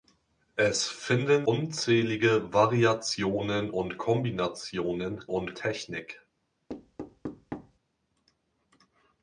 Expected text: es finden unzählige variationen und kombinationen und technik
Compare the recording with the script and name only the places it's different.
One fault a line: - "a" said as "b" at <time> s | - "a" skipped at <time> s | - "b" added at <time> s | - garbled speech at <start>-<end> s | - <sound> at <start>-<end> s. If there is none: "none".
- thud at 6.7-7.8 s